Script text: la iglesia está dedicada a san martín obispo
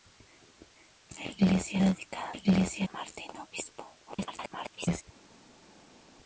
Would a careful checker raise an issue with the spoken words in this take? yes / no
yes